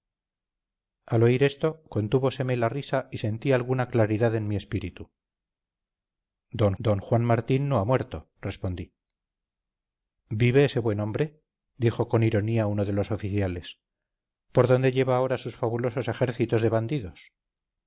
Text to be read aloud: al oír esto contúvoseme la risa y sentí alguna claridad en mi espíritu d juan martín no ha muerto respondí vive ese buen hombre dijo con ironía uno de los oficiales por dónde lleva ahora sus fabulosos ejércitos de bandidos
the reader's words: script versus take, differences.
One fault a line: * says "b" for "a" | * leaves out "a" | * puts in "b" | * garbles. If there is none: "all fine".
* puts in "d"